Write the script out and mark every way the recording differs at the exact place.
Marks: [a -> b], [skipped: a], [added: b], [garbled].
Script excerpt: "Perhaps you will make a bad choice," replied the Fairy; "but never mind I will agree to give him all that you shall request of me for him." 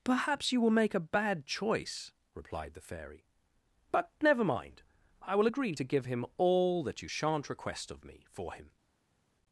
"Perhaps you will make a bad choice," replied the Fairy; "but never mind I will agree to give him all that you [shall -> shan't] request of me for him."